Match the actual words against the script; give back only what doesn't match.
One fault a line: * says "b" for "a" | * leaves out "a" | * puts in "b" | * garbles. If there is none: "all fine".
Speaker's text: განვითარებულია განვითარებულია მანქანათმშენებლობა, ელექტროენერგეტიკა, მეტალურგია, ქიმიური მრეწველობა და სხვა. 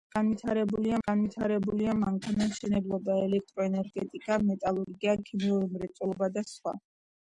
all fine